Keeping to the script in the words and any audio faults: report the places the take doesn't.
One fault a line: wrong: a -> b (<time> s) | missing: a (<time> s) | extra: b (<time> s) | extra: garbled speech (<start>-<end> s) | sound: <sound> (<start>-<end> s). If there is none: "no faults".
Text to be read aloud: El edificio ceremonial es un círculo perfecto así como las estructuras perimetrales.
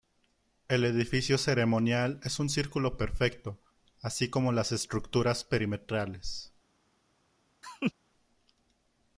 sound: laugh (7.6-7.9 s)